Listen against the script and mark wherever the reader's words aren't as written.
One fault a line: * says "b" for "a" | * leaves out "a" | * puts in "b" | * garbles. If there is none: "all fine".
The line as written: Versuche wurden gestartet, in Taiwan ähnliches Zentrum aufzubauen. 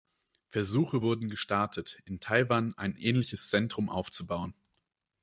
* puts in "ein"